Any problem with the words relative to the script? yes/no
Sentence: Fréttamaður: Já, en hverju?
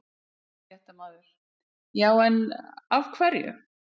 yes